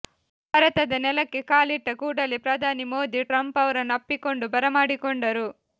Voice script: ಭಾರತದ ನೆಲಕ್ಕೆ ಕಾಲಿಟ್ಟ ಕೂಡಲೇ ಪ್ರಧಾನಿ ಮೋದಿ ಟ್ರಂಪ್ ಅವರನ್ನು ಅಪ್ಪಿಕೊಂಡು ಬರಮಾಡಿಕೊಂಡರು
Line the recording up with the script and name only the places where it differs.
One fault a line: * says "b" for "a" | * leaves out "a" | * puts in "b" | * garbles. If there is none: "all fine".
all fine